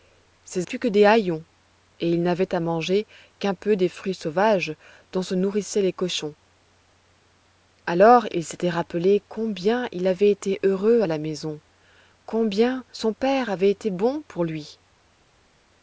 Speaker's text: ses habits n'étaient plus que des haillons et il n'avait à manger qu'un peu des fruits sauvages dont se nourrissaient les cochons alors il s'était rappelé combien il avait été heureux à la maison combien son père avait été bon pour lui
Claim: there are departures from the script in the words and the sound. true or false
true